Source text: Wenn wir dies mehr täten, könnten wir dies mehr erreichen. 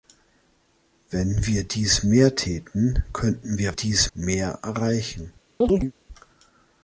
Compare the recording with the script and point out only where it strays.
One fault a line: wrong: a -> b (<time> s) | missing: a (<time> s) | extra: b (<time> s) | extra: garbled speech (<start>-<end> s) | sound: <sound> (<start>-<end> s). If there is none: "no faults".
sound: chirp (5.6-5.9 s)